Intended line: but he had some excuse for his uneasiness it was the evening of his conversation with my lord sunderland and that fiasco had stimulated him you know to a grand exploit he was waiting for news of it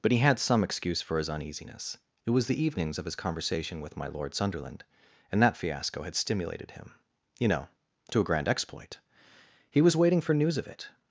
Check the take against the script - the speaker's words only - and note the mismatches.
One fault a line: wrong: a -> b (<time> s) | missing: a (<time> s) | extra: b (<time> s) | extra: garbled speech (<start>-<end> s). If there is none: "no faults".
wrong: evening -> evenings (2.6 s)